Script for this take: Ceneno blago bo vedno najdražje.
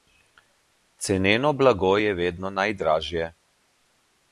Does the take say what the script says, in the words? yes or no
no